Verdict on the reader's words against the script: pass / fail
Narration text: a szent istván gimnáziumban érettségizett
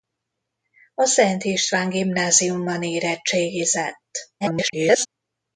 fail